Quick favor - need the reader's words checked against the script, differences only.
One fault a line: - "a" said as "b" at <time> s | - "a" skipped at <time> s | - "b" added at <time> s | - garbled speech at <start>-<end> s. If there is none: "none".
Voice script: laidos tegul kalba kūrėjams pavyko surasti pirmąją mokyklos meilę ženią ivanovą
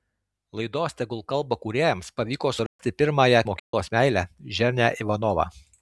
none